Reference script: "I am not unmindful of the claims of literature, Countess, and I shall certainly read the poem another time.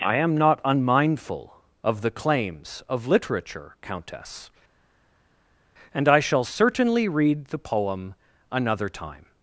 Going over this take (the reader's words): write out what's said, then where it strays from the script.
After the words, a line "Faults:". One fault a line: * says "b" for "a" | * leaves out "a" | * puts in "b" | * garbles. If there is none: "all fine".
"I am not unmindful of the claims of literature, Countess, and I shall certainly read the poem another time.
Faults:
all fine